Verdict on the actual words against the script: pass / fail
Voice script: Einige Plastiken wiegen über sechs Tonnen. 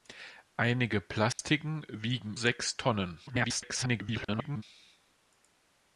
fail